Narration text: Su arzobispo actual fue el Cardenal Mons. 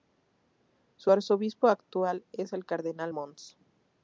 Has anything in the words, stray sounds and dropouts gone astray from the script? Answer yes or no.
yes